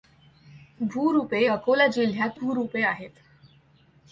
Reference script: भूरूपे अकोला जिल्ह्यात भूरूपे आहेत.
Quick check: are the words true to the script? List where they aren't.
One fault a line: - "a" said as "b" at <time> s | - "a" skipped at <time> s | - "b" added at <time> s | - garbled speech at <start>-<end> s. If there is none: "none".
none